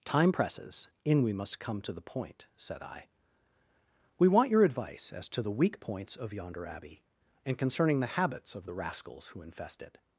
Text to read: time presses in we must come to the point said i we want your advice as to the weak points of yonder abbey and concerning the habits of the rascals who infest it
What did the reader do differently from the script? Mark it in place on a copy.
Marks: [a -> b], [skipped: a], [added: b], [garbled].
time presses in we must come to the point said i we want your advice as to the weak points of yonder abbey and concerning the habits of the rascals who infest it